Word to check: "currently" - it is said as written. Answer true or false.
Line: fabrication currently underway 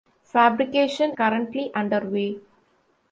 true